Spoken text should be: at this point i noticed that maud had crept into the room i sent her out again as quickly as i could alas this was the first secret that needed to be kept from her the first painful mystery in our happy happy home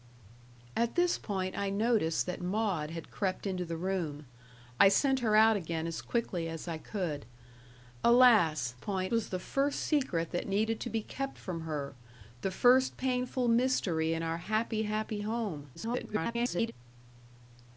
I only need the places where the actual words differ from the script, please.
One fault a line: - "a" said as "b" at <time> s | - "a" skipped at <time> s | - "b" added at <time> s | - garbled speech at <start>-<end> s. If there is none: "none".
- "this" said as "point" at 8.8 s
- garbled speech at 15.7-16.7 s